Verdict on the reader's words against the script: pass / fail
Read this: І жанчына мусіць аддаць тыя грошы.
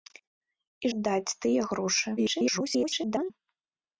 fail